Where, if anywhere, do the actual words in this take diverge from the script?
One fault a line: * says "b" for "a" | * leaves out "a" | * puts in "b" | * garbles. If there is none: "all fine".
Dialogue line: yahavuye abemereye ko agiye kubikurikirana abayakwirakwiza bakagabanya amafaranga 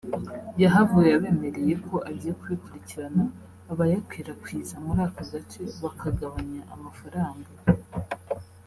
* puts in "muri aka gace"